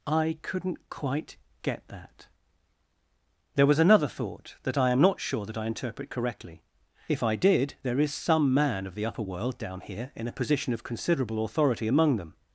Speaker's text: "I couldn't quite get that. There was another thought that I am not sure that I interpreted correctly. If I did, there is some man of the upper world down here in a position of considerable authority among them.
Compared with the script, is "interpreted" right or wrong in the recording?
wrong